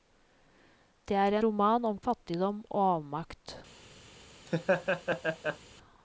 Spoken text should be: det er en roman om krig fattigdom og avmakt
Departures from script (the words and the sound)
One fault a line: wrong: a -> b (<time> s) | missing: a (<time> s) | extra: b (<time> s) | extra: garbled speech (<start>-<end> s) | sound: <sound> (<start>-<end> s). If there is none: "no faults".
missing: en (1.4 s)
missing: krig (2.0 s)
sound: laugh (4.5-5.6 s)